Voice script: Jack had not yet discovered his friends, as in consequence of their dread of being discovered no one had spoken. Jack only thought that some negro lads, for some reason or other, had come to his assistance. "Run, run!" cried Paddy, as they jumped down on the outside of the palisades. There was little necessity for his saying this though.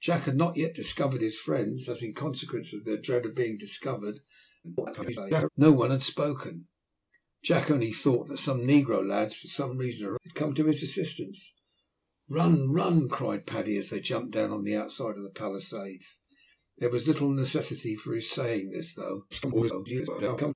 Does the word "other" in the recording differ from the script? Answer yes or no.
yes